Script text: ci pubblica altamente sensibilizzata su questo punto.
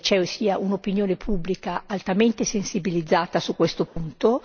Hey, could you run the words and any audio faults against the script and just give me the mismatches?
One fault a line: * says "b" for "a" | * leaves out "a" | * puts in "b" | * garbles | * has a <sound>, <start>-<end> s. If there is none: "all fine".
* puts in "sia un'opinione"
* has a dropout, 3.9-4.0 s